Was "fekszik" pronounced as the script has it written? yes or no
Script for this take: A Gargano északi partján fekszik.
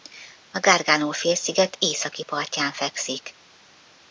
yes